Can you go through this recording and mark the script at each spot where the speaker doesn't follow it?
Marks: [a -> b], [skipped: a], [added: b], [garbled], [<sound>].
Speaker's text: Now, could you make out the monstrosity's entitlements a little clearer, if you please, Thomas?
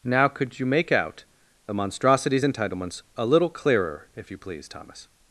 Now, could you make out the monstrosity's entitlements a little clearer, if you please, Thomas?